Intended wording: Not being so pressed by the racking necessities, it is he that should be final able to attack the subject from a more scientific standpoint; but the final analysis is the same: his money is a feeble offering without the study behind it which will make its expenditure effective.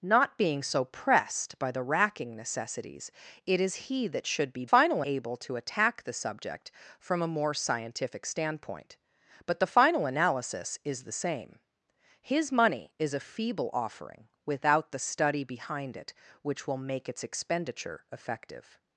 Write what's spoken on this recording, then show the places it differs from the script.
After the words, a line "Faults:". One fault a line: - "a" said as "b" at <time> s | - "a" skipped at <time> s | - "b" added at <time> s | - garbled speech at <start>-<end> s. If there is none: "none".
Not being so pressed by the racking necessities, it is he that should be final able to attack the subject from a more scientific standpoint; but the final analysis is the same: his money is a feeble offering without the study behind it which will make its expenditure effective.
Faults:
none